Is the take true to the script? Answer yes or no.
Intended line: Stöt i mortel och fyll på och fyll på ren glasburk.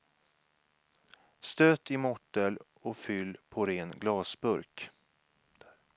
no